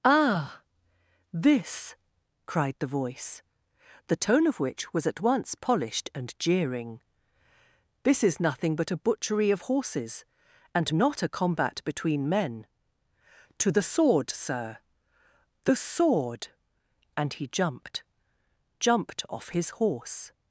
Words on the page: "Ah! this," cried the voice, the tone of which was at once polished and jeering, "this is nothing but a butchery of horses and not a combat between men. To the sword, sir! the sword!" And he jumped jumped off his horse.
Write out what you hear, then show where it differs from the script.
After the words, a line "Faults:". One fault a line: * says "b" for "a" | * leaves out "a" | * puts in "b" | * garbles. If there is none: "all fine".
"Ah! this," cried the voice, the tone of which was at once polished and jeering, "this is nothing but a butchery of horses and not a combat between men. To the sword, sir! the sword!" And he jumped jumped off his horse.
Faults:
all fine